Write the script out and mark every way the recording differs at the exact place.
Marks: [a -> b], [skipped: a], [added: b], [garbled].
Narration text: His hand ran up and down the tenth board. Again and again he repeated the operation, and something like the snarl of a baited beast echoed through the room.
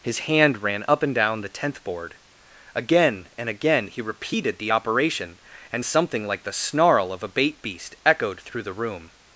His hand ran up and down the tenth board. Again and again he repeated the operation, and something like the snarl of a [baited -> bait] beast echoed through the room.